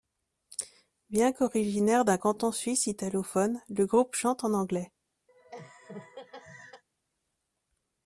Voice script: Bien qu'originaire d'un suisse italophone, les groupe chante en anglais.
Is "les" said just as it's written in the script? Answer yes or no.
no